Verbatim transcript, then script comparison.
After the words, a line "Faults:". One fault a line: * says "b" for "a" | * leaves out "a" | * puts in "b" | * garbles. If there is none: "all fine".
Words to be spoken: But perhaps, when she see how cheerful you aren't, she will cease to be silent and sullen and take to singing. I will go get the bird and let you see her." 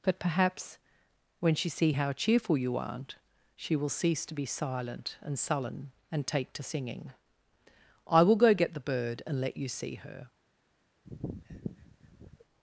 But perhaps, when she see how cheerful you aren't, she will cease to be silent and sullen and take to singing. I will go get the bird and let you see her."
Faults:
all fine